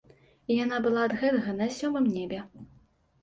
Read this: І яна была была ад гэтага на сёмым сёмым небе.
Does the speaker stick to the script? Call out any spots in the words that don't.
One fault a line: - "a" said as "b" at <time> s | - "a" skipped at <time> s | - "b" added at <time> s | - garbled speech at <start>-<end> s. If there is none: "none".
- "была" skipped at 1.0 s
- "сёмым" skipped at 2.1 s